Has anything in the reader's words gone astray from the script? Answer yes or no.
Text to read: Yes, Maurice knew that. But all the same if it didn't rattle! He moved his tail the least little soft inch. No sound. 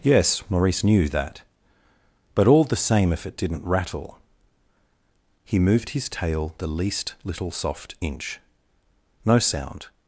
no